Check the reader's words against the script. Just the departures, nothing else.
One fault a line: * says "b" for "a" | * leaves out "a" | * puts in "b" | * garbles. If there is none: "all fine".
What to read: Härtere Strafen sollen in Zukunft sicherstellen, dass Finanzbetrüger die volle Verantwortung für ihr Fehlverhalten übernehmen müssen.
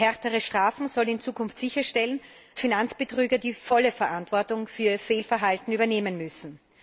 * leaves out "dass"